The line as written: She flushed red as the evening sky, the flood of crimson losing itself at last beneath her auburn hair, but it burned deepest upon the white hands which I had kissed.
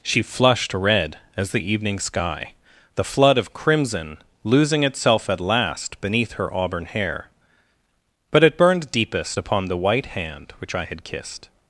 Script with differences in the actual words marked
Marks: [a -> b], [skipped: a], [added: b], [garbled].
She flushed red as the evening sky, the flood of crimson losing itself at last beneath her auburn hair, but it burned deepest upon the white [hands -> hand] which I had kissed.